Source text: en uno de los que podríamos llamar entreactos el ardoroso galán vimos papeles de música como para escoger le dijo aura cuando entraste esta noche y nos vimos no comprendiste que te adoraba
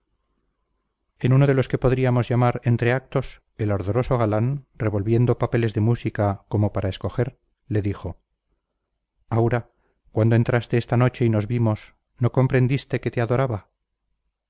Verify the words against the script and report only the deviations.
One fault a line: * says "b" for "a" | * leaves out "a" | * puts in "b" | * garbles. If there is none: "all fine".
* says "revolviendo" for "vimos"